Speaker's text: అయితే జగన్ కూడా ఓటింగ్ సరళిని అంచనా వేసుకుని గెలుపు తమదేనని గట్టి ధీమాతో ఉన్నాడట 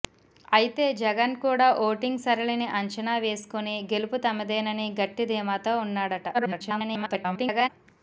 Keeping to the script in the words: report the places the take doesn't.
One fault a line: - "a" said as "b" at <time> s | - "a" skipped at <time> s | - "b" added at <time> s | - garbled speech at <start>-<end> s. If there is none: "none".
- garbled speech at 6.3-7.7 s